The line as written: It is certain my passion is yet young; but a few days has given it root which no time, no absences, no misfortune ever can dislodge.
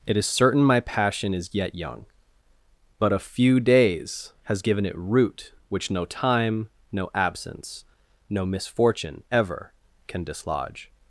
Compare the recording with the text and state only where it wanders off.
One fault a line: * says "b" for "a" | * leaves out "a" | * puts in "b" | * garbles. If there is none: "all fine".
* says "absence" for "absences"